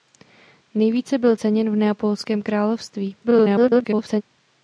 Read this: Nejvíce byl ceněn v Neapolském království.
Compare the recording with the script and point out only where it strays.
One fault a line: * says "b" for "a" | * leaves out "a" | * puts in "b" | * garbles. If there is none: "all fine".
* garbles